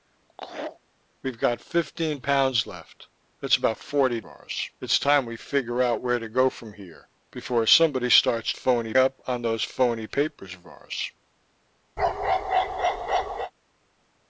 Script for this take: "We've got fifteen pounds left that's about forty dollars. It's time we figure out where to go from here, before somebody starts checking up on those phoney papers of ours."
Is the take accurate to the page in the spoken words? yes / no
no